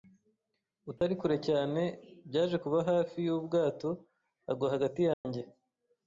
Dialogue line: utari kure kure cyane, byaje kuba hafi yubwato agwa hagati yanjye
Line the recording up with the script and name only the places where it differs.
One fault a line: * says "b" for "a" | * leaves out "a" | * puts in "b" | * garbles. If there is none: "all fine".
* leaves out "kure"